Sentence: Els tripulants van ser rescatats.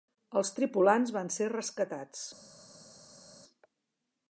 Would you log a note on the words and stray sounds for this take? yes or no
no